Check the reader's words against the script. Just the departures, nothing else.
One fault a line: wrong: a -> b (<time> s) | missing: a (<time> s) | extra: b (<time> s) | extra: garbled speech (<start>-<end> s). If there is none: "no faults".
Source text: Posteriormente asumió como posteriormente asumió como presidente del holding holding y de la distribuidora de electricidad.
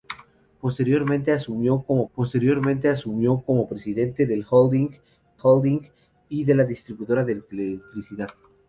no faults